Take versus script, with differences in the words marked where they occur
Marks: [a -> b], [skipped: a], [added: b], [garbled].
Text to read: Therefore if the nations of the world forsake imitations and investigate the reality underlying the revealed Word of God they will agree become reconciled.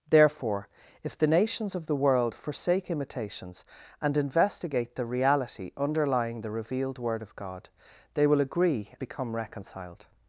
Therefore if the nations of the world forsake imitations and investigate the reality underlying the revealed Word of God they will agree become reconciled.